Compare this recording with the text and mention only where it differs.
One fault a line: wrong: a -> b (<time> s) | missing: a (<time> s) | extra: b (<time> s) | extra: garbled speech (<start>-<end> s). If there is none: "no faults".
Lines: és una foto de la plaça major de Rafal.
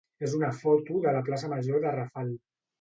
no faults